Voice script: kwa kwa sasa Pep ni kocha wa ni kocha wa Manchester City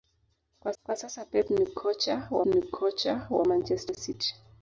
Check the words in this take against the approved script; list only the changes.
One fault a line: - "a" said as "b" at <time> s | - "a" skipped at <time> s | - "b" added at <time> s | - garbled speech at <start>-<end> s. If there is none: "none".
none